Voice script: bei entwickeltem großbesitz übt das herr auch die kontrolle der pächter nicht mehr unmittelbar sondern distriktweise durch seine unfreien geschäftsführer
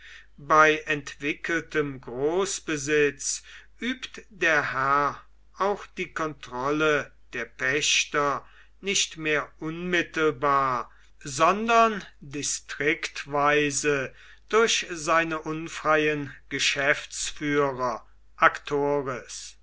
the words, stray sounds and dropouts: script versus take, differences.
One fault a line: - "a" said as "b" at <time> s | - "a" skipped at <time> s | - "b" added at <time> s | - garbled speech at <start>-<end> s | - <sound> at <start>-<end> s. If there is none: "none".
- "das" said as "der" at 4.3 s